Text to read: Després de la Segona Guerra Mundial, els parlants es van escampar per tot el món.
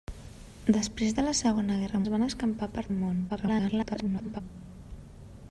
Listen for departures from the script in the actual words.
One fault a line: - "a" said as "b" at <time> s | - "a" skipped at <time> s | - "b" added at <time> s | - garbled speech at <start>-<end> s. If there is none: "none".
- "Mundial els parlants" skipped at 2.0 s
- "tot" skipped at 2.9 s
- garbled speech at 3.3-4.4 s